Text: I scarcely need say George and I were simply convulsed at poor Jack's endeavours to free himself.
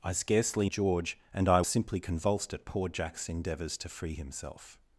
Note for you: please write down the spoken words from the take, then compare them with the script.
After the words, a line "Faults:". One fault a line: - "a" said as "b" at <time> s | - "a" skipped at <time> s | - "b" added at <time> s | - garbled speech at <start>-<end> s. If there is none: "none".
I scarcely George and I simply convulsed at poor Jack's endeavours to free himself.
Faults:
- "need say" skipped at 0.7 s
- "were" skipped at 1.6 s